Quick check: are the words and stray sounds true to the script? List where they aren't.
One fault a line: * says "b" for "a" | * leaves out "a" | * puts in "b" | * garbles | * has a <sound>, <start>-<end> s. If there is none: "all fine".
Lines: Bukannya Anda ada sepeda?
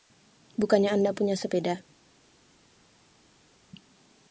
* says "punya" for "ada"